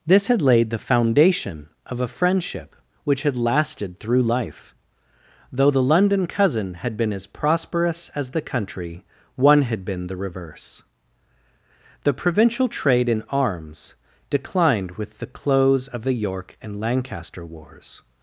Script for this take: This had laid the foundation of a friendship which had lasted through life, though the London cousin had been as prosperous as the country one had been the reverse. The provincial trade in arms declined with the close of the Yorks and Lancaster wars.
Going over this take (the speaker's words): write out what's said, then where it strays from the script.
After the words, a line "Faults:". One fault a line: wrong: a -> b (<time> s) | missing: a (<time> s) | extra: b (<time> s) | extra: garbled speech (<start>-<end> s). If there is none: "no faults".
This had laid the foundation of a friendship which had lasted through life, though the London cousin had been as prosperous as the country one had been the reverse. The provincial trade in arms declined with the close of the York and Lancaster wars.
Faults:
wrong: Yorks -> York (16.1 s)